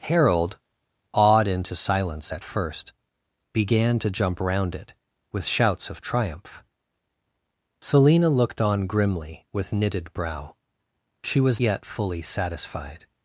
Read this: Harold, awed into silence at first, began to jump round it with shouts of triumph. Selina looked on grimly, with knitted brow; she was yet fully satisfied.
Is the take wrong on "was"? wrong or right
right